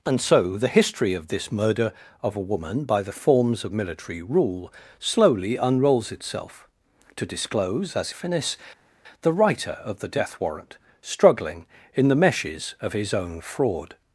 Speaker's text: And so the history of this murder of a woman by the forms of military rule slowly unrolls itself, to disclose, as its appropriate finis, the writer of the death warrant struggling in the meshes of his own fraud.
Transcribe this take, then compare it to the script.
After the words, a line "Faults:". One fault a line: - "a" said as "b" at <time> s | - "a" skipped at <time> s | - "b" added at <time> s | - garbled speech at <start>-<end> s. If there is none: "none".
And so the history of this murder of a woman by the forms of military rule slowly unrolls itself, to disclose, as finis, the writer of the death warrant struggling in the meshes of his own fraud.
Faults:
- "its appropriate" skipped at 8.1 s